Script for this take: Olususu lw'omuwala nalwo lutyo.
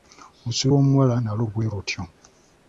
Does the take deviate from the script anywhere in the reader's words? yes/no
yes